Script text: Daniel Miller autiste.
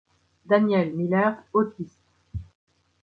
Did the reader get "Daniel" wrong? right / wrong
right